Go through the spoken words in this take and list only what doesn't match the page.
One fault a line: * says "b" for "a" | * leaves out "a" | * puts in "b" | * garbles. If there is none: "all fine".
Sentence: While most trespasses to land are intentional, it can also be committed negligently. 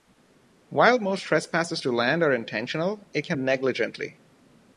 * leaves out "also be committed"